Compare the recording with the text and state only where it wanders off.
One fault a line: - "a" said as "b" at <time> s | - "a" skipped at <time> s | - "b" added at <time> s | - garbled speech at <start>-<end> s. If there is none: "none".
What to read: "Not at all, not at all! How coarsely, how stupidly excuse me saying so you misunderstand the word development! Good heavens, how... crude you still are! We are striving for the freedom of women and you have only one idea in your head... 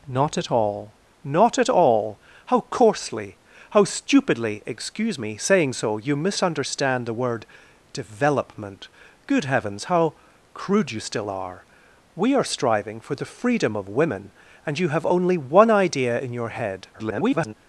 - garbled speech at 16.9-17.5 s